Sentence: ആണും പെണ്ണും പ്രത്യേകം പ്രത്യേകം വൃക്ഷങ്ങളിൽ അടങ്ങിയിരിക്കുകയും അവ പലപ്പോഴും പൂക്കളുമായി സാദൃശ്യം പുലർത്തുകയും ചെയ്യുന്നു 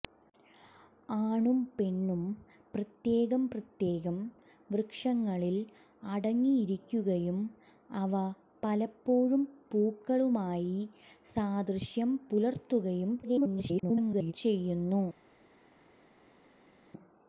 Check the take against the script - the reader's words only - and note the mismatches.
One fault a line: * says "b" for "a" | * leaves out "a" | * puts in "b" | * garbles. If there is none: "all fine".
* garbles